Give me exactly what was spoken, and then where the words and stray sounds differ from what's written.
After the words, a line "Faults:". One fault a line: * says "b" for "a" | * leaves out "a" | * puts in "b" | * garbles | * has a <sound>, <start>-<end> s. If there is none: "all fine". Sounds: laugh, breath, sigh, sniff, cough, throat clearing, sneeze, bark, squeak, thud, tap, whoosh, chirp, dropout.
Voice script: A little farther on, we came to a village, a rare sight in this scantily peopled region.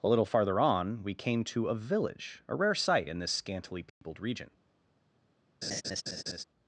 A little farther on, we came to a village, a rare sight in this scantily peopled region.
Faults:
* has a dropout, 3.9-4.0 s
* has a laugh, 5.6-6.4 s